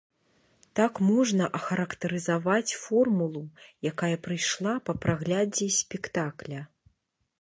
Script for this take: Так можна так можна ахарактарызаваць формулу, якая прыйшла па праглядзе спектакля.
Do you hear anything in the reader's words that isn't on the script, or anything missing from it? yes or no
yes